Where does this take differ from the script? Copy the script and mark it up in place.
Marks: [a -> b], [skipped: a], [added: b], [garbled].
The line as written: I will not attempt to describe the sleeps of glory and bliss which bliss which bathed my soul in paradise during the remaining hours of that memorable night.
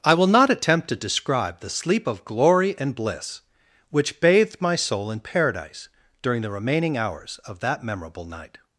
I will not attempt to describe the [sleeps -> sleep] of glory and bliss which [skipped: bliss which] bathed my soul in paradise during the remaining hours of that memorable night.